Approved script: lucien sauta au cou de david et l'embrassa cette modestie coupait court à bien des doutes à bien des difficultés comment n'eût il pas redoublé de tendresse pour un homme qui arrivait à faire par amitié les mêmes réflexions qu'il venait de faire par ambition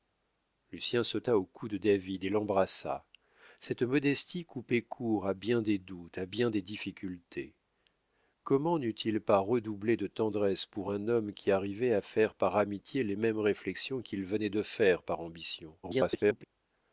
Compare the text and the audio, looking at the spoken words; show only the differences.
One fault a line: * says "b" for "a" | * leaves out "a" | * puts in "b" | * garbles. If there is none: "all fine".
* garbles